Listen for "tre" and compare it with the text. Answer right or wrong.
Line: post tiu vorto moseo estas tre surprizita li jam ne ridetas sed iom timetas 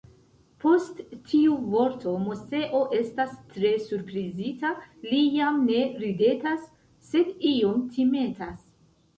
right